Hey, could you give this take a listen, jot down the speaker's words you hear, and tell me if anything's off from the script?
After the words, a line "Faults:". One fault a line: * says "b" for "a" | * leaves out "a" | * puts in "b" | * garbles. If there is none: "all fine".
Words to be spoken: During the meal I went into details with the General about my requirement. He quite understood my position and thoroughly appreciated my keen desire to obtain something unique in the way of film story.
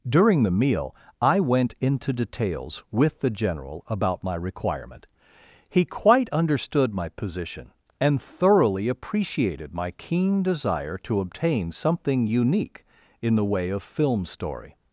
During the meal I went into details with the General about my requirement. He quite understood my position and thoroughly appreciated my keen desire to obtain something unique in the way of film story.
Faults:
all fine